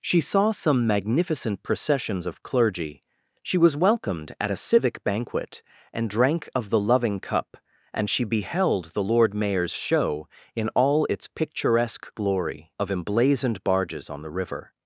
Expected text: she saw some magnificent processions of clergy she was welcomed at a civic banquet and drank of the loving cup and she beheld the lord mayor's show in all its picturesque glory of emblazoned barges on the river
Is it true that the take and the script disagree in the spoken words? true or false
false